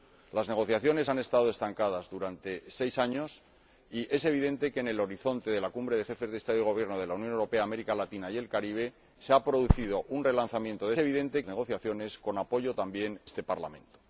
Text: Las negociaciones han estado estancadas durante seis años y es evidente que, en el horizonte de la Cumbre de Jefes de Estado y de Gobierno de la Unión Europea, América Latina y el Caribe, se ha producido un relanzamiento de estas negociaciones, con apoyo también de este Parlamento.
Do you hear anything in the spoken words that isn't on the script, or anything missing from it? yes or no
yes